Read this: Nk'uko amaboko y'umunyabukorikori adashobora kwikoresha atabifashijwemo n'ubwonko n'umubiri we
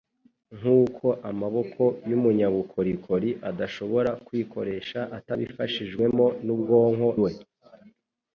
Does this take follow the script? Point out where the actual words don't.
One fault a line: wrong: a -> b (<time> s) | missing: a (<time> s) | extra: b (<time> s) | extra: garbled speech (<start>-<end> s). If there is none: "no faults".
missing: n'umubiri (7.1 s)